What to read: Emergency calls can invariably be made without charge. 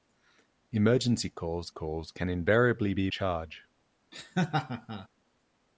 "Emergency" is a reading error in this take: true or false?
false